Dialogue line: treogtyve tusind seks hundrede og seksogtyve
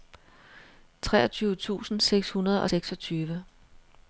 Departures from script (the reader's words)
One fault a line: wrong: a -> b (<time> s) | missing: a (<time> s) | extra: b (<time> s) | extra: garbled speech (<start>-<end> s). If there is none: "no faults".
no faults